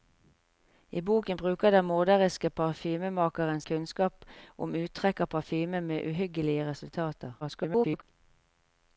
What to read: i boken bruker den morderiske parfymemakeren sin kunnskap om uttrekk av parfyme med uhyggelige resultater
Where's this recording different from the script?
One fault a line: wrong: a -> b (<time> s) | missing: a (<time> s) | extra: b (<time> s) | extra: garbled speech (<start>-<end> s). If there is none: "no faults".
missing: sin (3.6 s)
extra: garbled speech (7.4-8.0 s)